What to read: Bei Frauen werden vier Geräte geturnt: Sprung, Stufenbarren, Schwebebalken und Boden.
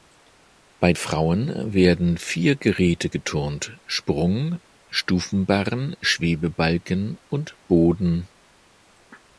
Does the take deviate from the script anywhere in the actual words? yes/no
no